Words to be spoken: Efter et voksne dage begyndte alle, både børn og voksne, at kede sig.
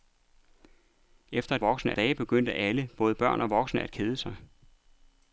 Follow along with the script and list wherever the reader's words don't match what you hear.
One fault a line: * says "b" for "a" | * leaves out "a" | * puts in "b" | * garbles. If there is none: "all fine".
all fine